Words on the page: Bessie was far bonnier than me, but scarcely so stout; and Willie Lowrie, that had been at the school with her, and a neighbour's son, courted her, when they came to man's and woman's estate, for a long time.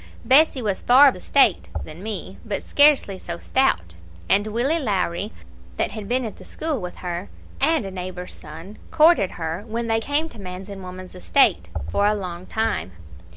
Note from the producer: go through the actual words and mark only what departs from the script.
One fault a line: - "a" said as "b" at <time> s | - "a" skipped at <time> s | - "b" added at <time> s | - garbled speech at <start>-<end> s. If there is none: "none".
- "bonnier" said as "estate" at 1.1 s